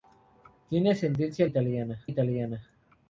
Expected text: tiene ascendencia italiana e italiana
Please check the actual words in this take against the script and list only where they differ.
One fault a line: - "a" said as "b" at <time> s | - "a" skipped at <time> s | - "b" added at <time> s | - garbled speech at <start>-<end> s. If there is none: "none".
none